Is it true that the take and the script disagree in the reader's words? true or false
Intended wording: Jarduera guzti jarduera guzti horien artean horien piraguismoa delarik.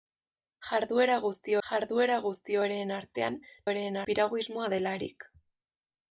false